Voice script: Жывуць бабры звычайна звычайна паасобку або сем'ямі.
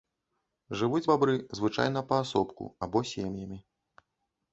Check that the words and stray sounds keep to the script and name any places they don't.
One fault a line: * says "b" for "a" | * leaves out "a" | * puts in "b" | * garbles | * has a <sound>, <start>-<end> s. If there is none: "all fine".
* leaves out "звычайна"